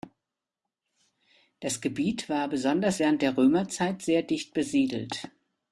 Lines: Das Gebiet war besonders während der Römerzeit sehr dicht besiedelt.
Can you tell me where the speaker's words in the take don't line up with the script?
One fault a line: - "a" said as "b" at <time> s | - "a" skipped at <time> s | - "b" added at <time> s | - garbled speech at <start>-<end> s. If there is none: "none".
none